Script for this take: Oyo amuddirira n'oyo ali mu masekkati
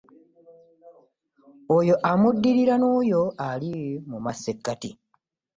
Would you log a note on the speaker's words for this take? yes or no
no